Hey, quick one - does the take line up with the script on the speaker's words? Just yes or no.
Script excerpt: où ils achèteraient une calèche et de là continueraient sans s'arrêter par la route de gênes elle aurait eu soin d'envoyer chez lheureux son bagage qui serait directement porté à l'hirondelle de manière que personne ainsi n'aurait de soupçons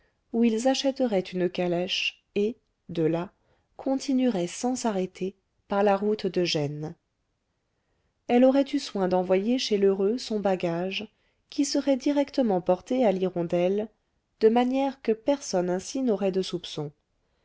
yes